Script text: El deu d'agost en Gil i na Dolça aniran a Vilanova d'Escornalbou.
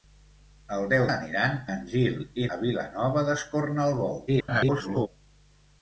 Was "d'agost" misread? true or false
true